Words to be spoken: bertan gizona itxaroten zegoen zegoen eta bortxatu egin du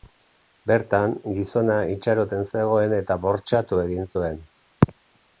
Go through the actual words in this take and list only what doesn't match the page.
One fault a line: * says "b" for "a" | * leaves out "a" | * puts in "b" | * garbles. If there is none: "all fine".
* leaves out "zegoen"
* says "zuen" for "du"